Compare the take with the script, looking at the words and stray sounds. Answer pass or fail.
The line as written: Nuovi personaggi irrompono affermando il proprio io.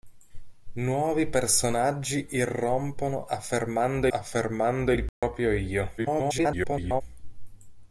fail